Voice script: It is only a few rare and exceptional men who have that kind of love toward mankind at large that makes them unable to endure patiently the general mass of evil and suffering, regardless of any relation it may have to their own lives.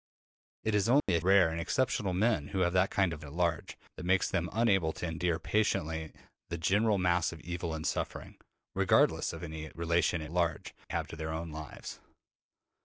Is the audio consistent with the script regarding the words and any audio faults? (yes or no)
no